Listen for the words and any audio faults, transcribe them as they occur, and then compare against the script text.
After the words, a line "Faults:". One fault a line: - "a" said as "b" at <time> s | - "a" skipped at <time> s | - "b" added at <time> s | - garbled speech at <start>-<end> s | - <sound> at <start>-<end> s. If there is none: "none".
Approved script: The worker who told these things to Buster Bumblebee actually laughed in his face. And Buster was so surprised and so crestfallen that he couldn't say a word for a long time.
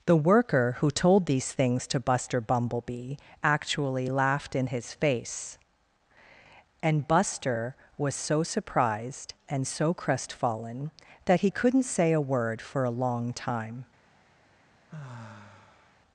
The worker who told these things to Buster Bumblebee actually laughed in his face. And Buster was so surprised and so crestfallen that he couldn't say a word for a long time.
Faults:
- sigh at 14.9-16.0 s